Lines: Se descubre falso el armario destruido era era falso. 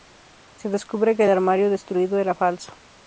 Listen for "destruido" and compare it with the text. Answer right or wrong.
right